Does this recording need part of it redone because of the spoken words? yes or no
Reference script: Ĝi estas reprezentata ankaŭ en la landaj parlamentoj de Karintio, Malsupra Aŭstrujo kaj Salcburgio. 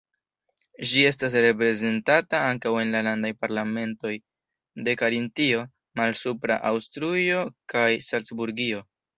no